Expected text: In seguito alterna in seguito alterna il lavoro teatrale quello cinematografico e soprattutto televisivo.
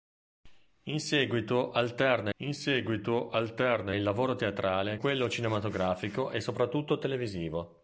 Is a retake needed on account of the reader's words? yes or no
no